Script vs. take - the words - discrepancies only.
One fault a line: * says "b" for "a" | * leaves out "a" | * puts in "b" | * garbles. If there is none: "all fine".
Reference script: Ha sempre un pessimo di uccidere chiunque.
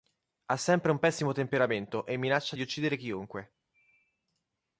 * puts in "temperamento e minaccia"